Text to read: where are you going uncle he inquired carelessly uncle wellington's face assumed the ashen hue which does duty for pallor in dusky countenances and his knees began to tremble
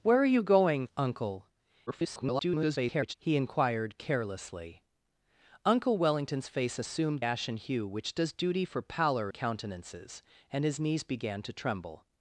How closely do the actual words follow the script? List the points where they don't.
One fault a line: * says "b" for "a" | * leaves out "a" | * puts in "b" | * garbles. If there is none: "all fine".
* garbles
* leaves out "the"
* leaves out "in dusky"